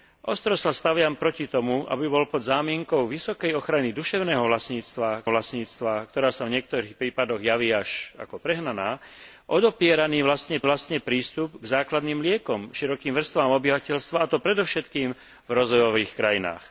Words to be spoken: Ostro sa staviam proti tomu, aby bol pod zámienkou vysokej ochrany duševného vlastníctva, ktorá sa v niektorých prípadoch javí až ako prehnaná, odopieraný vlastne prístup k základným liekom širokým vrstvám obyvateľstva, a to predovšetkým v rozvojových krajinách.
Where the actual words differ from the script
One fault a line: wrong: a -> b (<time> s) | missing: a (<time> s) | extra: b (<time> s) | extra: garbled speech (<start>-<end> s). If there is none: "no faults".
extra: vlastníctva (5.3 s)
extra: vlastne (10.6 s)